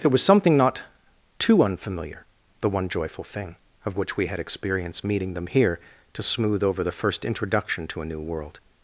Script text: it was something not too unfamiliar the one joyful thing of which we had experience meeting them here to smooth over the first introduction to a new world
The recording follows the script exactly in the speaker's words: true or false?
true